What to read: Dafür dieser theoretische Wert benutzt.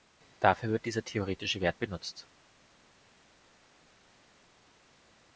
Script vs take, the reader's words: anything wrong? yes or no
yes